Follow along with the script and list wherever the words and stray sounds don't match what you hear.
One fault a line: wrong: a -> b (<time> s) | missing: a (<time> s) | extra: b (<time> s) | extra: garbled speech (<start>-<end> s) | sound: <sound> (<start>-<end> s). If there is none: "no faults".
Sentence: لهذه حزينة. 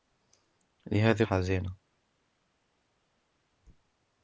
no faults